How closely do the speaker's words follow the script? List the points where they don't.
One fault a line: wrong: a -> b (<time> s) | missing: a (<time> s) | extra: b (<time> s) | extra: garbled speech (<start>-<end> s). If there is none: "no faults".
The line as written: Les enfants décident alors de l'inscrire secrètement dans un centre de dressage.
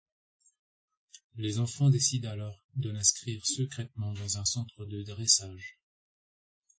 no faults